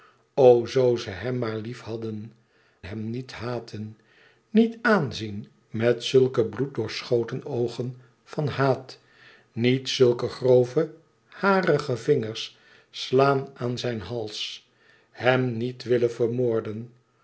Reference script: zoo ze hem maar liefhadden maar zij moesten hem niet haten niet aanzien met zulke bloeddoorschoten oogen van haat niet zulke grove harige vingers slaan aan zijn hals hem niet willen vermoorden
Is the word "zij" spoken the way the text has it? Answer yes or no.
no